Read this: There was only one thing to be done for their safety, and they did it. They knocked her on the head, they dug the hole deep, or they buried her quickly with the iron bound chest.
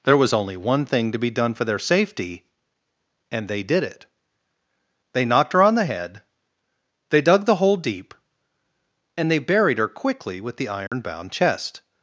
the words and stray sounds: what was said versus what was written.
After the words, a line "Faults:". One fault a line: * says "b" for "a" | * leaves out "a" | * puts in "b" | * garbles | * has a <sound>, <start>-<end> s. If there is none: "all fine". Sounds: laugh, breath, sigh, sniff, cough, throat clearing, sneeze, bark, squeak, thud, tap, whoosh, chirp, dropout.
There was only one thing to be done for their safety, and they did it. They knocked her on the head, they dug the hole deep, and they buried her quickly with the iron bound chest.
Faults:
* says "and" for "or"
* has a dropout, 10.9-10.9 s